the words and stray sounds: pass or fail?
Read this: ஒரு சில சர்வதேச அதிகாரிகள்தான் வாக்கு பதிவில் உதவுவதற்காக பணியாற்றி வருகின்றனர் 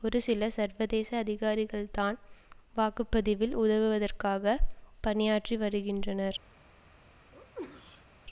fail